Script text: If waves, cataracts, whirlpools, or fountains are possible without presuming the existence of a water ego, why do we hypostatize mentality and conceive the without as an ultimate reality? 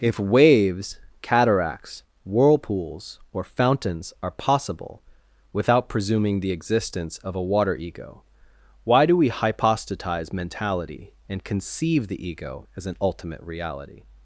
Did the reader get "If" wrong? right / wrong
right